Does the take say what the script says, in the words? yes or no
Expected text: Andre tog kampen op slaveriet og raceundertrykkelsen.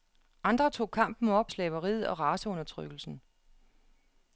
yes